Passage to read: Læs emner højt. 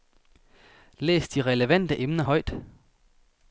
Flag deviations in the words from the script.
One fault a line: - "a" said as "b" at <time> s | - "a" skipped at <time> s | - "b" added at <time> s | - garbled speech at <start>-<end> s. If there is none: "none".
- "de relevante" added at 1.3 s